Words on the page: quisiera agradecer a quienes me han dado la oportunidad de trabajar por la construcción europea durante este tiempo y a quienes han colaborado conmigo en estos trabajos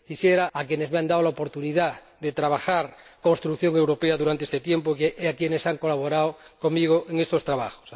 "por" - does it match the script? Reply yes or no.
no